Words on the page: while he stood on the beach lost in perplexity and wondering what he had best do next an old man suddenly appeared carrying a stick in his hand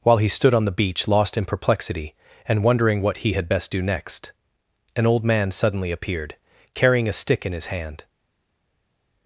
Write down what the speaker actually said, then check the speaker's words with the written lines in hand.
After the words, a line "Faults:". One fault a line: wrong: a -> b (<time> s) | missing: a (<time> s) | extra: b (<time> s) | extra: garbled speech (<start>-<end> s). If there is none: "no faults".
while he stood on the beach lost in perplexity and wondering what he had best do next an old man suddenly appeared carrying a stick in his hand
Faults:
no faults